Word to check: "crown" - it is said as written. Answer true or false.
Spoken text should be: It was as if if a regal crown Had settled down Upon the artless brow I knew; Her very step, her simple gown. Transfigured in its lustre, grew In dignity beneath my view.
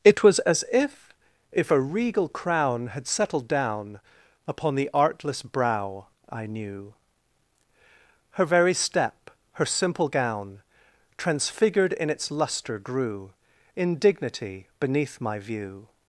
true